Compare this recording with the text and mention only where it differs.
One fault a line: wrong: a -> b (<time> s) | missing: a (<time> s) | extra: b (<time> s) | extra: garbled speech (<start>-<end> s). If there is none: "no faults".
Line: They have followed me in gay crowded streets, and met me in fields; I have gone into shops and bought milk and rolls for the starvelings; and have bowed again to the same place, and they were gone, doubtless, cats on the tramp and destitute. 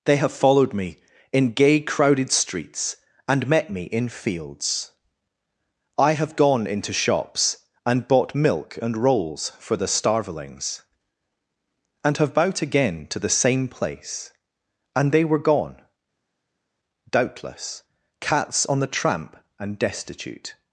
no faults